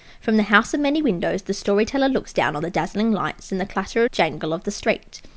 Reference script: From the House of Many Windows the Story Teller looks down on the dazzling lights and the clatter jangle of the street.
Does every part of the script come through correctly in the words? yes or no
yes